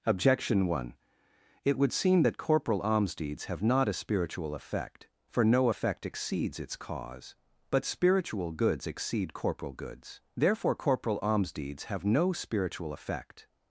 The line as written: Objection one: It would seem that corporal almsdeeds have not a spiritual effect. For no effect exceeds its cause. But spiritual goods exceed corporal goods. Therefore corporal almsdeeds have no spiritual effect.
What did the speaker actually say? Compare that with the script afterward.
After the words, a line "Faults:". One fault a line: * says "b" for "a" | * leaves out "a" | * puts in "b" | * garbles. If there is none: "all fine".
Objection one: It would seem that corporal almsdeeds have not a spiritual effect. For no effect exceeds its cause. But spiritual goods exceed corporal goods. Therefore corporal almsdeeds have no spiritual effect.
Faults:
all fine